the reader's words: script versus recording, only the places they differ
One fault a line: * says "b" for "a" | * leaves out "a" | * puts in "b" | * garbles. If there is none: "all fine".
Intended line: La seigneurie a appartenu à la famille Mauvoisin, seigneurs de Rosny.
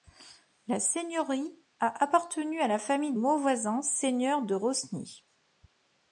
all fine